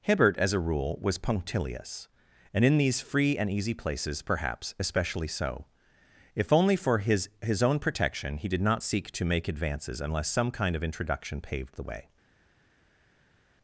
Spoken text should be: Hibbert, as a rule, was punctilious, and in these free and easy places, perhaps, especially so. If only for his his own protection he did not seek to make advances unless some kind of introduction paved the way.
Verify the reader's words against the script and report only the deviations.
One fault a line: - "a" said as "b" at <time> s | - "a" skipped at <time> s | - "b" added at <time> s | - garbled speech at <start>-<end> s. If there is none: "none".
none